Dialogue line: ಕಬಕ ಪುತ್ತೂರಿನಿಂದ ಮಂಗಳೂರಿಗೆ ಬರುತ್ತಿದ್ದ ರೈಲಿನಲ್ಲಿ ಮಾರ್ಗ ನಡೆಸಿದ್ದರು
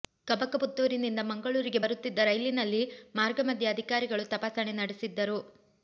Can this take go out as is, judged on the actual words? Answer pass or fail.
fail